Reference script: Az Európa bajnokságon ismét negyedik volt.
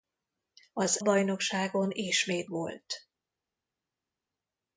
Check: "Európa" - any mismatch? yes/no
yes